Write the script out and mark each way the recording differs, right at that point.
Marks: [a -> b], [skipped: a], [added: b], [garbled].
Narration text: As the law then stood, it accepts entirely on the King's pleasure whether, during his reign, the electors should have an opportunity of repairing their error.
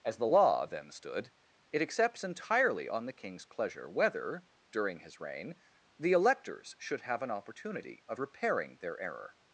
As the law then stood, it accepts entirely on the King's pleasure whether, during his reign, the electors should have an opportunity of repairing their error.